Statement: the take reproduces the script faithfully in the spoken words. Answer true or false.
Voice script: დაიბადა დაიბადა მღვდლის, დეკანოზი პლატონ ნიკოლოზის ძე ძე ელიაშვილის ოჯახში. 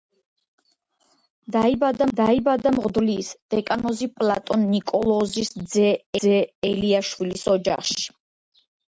true